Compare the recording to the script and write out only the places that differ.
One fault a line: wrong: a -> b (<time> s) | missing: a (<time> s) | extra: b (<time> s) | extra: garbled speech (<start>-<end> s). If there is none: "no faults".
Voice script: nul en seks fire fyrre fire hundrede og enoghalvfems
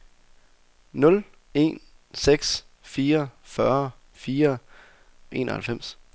missing: hundrede og (4.6 s)